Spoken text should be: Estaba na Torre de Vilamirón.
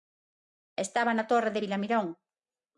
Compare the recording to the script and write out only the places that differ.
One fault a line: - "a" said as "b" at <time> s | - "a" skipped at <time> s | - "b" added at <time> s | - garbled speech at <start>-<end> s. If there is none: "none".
none